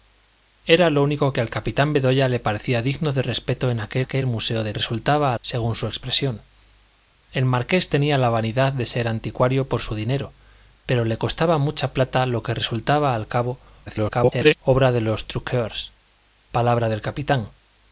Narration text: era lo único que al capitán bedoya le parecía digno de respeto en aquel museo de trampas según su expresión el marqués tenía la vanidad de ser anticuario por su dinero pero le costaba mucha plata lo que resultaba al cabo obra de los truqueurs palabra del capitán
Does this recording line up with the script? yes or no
no